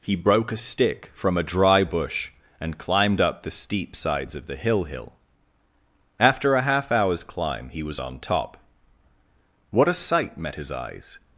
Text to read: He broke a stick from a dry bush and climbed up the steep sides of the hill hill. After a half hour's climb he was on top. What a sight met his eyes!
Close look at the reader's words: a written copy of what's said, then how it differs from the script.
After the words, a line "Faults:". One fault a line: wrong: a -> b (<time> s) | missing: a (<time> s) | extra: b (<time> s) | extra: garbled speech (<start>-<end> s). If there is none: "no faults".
He broke a stick from a dry bush and climbed up the steep sides of the hill hill. After a half hour's climb he was on top. What a sight met his eyes!
Faults:
no faults